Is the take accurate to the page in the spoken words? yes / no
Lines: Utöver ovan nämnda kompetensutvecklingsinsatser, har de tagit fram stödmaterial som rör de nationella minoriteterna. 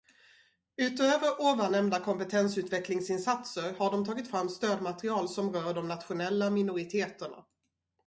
yes